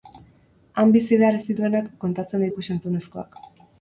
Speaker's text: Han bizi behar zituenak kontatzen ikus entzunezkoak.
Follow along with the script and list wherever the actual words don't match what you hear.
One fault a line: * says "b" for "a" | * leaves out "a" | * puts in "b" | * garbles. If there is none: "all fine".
all fine